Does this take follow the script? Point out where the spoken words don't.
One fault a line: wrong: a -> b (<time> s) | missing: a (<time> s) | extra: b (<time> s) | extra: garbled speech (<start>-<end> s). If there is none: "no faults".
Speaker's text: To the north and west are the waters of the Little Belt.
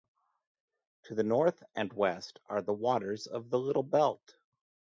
no faults